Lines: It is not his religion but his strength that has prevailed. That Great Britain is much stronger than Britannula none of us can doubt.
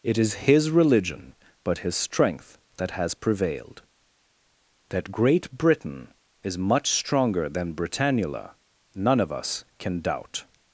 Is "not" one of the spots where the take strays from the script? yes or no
yes